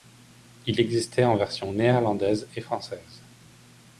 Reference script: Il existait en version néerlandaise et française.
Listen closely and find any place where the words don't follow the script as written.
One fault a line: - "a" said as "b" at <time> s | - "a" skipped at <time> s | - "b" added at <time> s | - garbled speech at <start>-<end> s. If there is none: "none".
none